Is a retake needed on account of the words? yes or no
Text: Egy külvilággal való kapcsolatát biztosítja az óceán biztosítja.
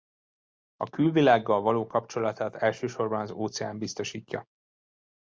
yes